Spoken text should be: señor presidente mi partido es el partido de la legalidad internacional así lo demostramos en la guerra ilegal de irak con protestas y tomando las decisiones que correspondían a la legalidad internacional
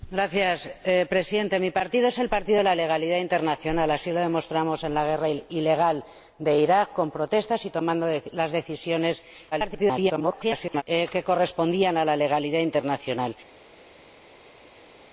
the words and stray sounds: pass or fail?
fail